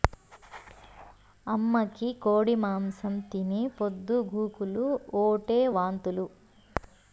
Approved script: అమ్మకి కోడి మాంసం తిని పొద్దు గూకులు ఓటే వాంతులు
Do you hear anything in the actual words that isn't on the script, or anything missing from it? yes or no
no